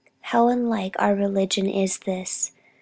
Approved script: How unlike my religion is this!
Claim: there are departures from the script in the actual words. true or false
true